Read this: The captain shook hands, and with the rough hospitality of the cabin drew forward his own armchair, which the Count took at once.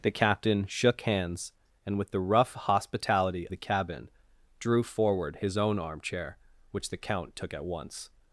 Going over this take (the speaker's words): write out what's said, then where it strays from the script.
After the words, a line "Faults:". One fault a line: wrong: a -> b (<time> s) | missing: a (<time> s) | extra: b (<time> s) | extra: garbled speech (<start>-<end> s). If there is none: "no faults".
The captain shook hands, and with the rough hospitality the cabin drew forward his own armchair, which the Count took at once.
Faults:
missing: of (3.5 s)